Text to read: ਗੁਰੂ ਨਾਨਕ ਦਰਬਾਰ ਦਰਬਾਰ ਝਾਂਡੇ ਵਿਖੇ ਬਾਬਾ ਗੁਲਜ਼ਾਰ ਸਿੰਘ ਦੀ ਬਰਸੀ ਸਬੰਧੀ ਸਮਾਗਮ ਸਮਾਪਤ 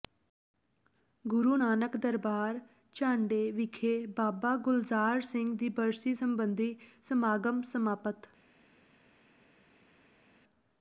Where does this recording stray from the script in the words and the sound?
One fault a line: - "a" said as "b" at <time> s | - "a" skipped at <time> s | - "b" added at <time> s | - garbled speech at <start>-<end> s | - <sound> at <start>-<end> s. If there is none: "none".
- "ਦਰਬਾਰ" skipped at 2.6 s